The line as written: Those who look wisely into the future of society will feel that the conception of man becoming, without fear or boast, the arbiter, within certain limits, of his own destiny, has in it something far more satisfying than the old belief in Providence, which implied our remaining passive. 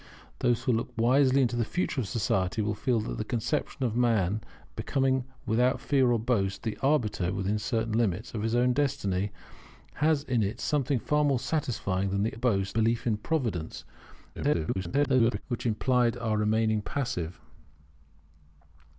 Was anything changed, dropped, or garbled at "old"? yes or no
yes